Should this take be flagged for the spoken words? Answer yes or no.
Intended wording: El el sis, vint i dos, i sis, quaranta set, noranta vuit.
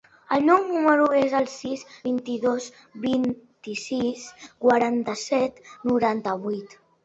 yes